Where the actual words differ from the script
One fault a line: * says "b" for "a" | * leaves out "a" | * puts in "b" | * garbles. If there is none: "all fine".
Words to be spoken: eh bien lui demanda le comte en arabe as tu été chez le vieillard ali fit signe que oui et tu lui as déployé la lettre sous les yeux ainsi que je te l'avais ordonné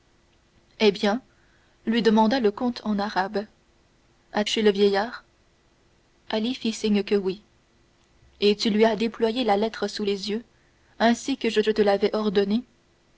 * leaves out "tu été"
* puts in "je"